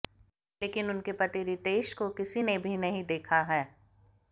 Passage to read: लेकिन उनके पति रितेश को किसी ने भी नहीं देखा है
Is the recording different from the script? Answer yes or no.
no